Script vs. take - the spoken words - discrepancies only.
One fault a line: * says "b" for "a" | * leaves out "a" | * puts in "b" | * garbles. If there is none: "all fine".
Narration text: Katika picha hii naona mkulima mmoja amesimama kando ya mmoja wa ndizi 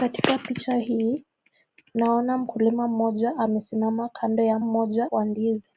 all fine